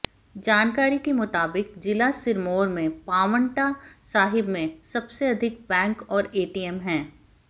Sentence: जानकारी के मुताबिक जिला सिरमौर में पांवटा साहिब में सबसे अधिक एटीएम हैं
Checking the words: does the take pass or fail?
fail